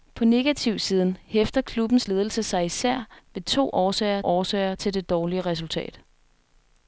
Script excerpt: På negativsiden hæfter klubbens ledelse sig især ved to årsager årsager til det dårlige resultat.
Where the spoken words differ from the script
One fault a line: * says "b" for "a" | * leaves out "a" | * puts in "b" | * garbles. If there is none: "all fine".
all fine